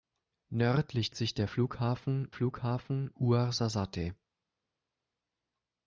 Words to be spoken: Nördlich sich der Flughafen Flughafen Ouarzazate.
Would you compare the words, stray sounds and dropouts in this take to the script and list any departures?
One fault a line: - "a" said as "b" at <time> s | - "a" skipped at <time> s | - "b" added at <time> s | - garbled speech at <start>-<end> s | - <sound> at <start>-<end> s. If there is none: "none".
none